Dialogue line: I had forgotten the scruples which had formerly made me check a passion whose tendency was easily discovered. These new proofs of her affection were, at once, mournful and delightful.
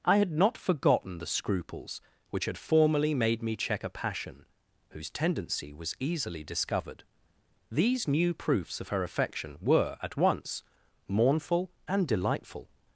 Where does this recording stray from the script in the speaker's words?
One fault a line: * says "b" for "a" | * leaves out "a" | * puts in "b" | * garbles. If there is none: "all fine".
* puts in "not"